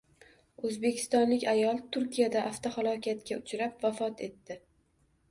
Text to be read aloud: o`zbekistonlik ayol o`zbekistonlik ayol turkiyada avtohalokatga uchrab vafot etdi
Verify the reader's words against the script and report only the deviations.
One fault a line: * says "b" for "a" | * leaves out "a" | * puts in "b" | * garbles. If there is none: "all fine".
* leaves out "o`zbekistonlik ayol"